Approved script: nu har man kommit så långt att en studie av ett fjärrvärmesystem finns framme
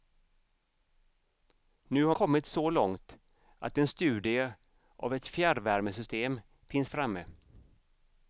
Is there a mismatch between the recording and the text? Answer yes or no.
yes